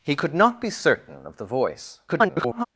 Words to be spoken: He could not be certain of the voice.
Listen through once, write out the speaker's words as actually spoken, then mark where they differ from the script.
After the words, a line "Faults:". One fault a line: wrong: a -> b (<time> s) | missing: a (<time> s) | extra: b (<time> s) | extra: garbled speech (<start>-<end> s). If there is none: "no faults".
He could not be certain of the voice. [garbled]
Faults:
extra: garbled speech (2.1-2.6 s)